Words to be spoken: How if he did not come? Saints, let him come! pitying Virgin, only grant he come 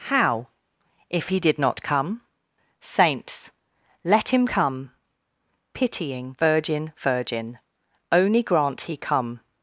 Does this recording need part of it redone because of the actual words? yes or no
yes